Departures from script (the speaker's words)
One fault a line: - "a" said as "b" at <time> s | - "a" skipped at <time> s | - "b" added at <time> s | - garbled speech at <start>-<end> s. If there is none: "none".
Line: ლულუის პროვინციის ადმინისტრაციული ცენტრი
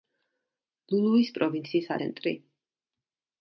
- "ადმინისტრაციული" skipped at 1.9 s